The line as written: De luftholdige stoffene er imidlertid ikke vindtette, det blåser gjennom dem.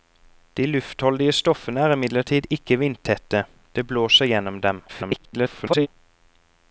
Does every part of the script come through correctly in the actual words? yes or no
no